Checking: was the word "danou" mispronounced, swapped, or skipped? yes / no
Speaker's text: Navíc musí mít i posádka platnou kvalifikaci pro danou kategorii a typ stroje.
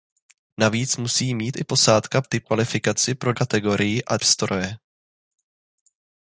yes